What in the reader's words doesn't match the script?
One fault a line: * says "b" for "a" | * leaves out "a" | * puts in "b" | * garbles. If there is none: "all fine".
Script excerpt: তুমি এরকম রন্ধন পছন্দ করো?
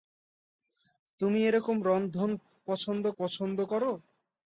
* puts in "পছন্দ"